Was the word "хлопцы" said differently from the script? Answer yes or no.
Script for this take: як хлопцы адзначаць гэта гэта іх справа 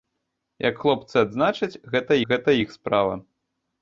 no